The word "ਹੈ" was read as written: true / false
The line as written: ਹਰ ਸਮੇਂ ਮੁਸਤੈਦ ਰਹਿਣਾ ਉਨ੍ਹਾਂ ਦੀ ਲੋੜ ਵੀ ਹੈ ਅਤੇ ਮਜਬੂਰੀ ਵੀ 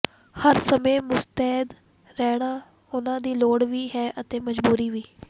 true